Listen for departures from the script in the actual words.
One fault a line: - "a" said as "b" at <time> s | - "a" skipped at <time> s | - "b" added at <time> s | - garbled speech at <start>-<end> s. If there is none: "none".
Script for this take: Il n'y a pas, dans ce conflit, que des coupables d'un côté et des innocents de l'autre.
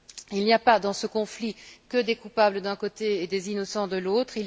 none